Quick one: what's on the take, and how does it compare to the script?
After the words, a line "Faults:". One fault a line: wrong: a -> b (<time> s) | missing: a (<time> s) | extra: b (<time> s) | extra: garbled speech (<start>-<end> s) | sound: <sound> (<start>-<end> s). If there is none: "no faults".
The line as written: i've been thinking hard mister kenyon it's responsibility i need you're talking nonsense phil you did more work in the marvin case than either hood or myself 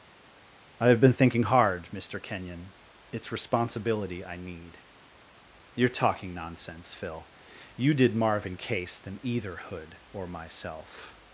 i've been thinking hard mister kenyon it's responsibility i need you're talking nonsense phil you did marvin case than either hood or myself
Faults:
missing: more work in the (8.1 s)